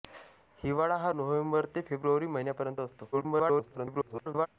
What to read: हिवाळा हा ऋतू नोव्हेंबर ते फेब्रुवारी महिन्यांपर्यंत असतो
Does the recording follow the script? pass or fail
fail